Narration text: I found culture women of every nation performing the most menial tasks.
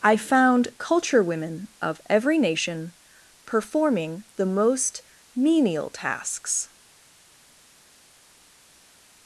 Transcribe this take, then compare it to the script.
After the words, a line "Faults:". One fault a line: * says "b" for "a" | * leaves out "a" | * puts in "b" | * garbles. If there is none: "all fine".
I found culture women of every nation performing the most menial tasks.
Faults:
all fine